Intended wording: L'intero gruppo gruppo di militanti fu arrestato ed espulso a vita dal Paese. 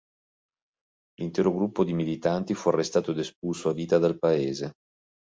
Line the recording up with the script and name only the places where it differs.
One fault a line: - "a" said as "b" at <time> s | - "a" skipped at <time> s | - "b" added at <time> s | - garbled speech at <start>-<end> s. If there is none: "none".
- "gruppo" skipped at 1.8 s